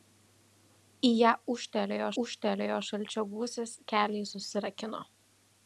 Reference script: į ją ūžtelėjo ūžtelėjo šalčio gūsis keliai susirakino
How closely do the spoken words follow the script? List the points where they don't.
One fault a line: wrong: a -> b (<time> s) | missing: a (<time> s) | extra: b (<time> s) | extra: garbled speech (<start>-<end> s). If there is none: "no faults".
no faults